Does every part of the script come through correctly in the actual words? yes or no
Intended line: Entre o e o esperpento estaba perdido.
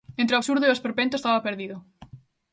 no